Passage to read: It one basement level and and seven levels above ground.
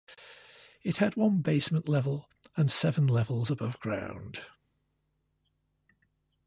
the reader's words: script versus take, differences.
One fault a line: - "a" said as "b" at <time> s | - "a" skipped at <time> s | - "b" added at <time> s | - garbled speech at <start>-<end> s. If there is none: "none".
- "had" added at 1.0 s
- "and" skipped at 2.7 s